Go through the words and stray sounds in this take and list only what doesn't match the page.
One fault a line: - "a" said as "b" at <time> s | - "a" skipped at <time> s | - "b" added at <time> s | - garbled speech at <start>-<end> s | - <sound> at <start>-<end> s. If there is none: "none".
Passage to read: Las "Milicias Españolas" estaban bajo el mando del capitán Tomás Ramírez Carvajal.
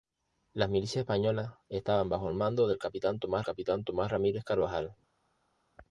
- "capitán Tomás" added at 3.4 s